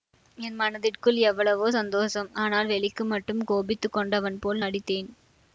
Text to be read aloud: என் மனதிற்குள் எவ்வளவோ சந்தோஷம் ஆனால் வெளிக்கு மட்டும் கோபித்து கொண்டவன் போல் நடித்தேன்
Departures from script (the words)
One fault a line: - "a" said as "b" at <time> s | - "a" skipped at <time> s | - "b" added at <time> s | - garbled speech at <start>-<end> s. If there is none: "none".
none